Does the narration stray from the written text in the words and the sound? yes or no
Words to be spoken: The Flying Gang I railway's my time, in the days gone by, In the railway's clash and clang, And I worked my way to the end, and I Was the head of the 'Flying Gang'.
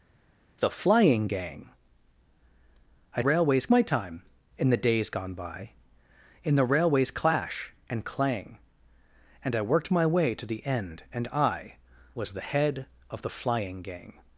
no